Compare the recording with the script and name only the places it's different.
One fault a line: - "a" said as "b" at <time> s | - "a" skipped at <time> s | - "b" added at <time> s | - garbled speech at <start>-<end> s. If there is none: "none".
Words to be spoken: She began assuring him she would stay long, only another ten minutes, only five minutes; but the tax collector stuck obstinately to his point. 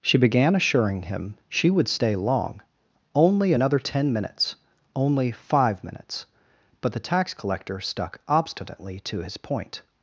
none